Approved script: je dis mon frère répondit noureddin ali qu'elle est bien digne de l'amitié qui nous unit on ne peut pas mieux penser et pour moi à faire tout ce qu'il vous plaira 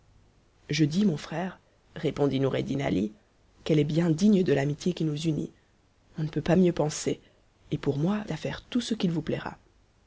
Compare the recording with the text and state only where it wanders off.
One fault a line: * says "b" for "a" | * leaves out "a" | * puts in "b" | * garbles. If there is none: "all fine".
all fine